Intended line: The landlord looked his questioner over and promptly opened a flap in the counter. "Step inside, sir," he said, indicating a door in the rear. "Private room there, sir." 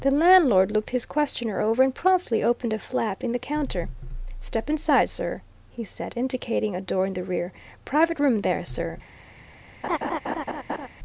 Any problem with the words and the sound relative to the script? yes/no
yes